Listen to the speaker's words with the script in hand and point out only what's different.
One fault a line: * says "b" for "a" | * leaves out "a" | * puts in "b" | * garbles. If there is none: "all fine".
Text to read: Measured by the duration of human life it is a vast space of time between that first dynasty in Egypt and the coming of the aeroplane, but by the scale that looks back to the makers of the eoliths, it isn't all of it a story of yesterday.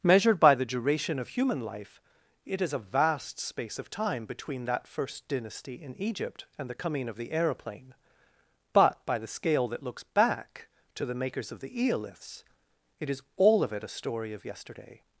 * says "is" for "isn't"